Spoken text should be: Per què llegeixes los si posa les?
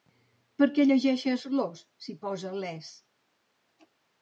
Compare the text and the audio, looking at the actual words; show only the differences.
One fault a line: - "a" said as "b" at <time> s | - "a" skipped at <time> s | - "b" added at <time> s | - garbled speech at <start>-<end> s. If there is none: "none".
none